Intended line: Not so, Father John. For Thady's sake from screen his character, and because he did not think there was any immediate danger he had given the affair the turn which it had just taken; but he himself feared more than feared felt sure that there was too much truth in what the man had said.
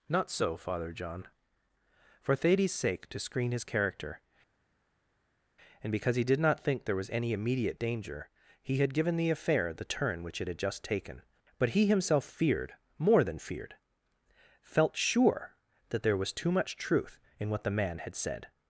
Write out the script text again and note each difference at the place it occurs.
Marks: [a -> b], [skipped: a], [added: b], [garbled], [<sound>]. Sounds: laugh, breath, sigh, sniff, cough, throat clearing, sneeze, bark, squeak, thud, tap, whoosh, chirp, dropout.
Not so, Father John. For Thady's sake [from -> to] screen his character, and because he did not think there was any immediate danger he had given the affair the turn which it had just taken; but he himself feared more than feared felt sure that there was too much truth in what the man had said.